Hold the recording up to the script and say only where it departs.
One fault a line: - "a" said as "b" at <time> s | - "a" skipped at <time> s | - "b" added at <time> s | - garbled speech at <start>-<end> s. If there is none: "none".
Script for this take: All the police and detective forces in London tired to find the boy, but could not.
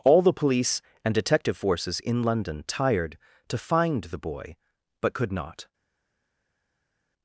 none